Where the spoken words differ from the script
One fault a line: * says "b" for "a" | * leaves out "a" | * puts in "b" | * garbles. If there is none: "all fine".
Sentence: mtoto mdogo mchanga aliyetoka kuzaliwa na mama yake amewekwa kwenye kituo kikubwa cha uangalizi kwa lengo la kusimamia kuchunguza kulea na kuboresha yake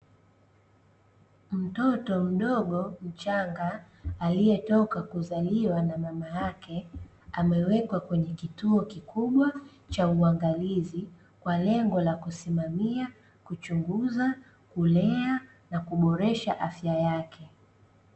* puts in "afya"